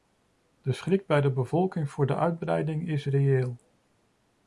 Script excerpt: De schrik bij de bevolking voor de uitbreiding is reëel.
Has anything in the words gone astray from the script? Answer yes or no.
no